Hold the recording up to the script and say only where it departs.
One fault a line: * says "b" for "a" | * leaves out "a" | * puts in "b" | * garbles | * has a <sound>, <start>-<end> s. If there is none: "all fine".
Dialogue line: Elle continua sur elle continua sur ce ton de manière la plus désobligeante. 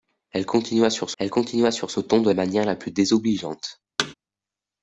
* has a thud, 4.0-4.1 s